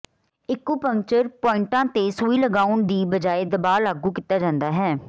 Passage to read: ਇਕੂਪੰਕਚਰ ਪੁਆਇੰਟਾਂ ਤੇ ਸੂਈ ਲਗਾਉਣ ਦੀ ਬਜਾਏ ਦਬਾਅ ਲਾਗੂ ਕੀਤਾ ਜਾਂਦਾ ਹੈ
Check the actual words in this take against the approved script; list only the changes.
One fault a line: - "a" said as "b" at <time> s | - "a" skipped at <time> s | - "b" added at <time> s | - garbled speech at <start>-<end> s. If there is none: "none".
none